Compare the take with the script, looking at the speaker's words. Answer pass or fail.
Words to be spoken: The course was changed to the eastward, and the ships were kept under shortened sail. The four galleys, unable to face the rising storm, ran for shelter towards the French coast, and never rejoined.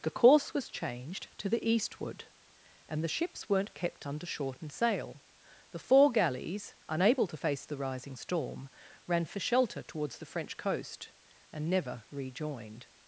fail